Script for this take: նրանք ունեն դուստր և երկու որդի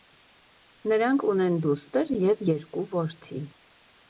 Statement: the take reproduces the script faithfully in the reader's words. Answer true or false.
true